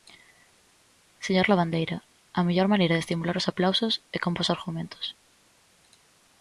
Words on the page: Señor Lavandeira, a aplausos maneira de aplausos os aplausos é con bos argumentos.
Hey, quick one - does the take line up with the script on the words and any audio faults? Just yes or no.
no